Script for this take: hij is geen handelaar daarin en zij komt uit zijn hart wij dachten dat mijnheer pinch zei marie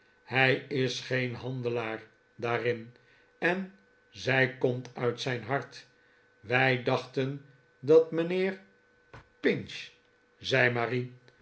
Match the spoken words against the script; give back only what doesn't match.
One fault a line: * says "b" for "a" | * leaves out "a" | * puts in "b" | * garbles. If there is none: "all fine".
all fine